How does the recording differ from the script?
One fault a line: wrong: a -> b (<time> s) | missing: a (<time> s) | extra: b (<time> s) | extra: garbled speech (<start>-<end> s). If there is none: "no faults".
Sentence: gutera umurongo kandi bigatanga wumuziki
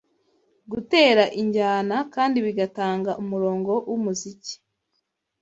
wrong: umurongo -> injyana (1.4 s)
extra: umurongo (3.2 s)